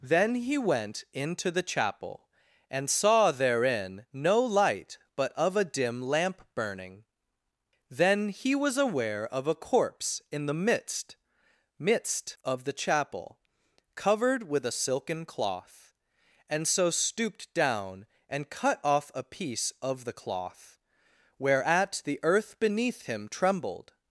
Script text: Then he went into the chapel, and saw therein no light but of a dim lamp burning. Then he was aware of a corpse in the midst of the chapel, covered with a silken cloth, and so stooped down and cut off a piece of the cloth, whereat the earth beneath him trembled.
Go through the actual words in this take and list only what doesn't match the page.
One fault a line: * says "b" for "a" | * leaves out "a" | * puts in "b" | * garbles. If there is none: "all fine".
* puts in "midst"